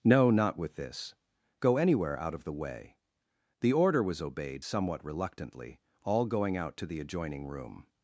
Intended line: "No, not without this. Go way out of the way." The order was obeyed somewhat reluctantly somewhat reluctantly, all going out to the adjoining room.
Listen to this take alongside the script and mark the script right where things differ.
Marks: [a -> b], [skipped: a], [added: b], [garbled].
"No, not [without -> with] this. Go [way -> anywhere] out of the way." The order was obeyed somewhat reluctantly [skipped: somewhat reluctantly,] all going out to the adjoining room.